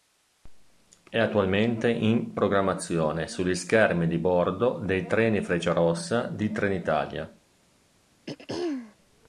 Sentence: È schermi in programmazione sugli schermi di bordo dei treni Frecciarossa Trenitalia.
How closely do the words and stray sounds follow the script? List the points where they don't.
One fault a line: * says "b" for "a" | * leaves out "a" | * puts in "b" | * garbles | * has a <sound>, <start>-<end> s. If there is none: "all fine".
* says "attualmente" for "schermi"
* puts in "di"
* has a throat clearing, 8.3-9.0 s